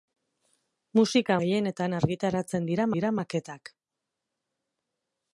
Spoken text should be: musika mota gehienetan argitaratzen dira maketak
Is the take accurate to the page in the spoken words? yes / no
no